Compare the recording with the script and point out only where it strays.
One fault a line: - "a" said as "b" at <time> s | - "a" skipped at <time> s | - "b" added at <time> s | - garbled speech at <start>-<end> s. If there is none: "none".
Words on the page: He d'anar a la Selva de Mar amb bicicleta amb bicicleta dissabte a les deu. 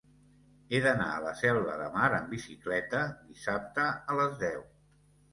- "amb bicicleta" skipped at 3.0 s